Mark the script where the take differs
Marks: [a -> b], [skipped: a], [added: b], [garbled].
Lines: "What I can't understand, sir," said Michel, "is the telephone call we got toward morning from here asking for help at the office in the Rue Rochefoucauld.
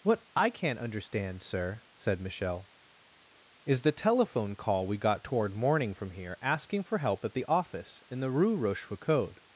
"What I can't understand, sir," said Michel, "is the telephone call we got toward morning from here asking for help at the office in the Rue Rochefoucauld.